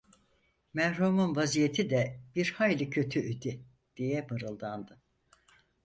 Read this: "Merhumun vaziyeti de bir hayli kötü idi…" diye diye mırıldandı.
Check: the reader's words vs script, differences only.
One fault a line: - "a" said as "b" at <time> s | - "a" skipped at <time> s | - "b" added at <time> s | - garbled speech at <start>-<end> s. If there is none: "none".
- "diye" skipped at 4.3 s